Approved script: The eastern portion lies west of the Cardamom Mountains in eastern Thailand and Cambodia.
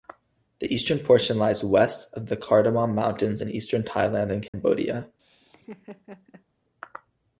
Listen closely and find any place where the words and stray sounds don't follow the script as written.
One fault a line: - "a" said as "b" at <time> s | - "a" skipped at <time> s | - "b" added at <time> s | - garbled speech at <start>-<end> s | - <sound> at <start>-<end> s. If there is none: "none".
- dropout at 4.5-4.5 s
- laugh at 5.2-6.5 s